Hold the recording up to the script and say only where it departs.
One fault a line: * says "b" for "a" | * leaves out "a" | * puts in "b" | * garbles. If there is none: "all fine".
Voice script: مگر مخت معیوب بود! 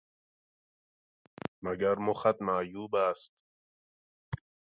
* says "است" for "بود"